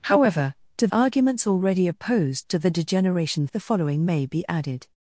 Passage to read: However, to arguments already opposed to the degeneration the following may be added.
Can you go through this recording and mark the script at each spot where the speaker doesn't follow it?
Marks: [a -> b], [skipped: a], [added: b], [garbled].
However, to arguments already opposed to the degeneration the following may be added.